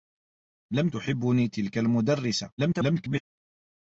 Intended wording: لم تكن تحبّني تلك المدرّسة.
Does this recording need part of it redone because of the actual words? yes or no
yes